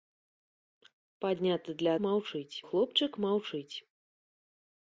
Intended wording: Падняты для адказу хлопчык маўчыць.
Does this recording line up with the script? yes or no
no